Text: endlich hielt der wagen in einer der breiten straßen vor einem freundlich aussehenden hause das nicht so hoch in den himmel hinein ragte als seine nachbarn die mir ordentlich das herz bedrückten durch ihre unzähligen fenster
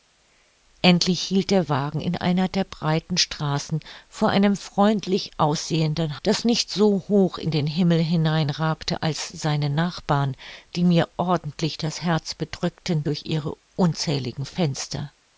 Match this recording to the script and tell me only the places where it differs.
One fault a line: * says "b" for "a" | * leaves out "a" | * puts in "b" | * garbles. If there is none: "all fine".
* leaves out "hause"